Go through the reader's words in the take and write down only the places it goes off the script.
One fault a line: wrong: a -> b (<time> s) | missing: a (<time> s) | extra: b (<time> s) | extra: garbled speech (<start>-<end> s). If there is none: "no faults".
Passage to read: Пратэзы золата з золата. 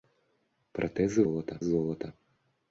no faults